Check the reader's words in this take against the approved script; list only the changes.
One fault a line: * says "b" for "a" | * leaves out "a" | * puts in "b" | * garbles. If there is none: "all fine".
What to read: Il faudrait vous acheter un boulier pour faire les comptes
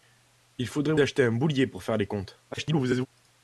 * leaves out "vous"
* garbles